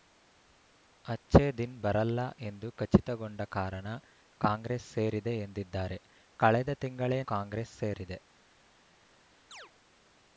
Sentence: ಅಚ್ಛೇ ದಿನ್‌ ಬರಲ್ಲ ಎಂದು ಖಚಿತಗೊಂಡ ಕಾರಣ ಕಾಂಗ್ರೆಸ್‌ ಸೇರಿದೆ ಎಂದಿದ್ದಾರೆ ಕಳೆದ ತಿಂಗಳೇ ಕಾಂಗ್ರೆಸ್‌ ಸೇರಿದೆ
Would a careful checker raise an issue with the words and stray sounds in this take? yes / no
yes